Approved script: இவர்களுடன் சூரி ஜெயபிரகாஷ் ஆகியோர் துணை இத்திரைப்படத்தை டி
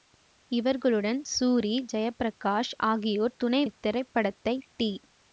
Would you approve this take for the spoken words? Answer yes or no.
yes